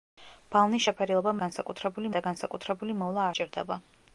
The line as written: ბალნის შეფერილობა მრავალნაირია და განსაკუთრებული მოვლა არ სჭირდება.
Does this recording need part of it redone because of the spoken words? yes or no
yes